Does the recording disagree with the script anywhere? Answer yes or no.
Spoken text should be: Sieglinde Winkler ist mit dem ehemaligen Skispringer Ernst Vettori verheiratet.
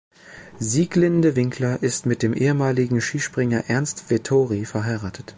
no